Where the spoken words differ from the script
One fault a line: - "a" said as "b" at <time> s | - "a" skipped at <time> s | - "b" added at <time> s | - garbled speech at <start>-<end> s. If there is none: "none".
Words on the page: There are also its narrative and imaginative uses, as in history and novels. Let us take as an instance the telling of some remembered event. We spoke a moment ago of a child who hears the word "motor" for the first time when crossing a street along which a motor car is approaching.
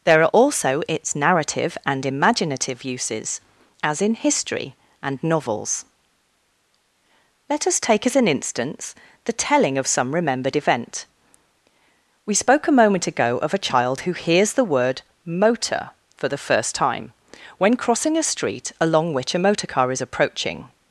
none